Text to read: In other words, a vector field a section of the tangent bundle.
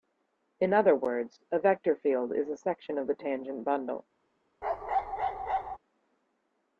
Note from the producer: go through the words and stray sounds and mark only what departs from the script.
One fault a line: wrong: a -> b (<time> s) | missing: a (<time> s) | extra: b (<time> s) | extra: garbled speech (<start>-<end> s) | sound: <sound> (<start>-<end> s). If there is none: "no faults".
extra: is (2.3 s)
sound: bark (4.6-5.8 s)